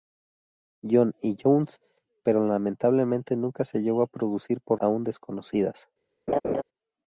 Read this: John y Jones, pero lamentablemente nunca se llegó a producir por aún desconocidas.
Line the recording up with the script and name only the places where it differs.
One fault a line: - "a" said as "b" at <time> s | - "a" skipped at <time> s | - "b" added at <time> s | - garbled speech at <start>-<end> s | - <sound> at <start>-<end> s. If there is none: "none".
- laugh at 6.3-6.6 s